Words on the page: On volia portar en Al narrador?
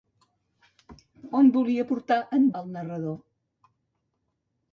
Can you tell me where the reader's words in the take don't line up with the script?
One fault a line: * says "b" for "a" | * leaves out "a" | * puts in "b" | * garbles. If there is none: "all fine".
all fine